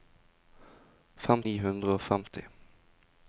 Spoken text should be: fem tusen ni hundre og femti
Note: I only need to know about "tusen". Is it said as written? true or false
false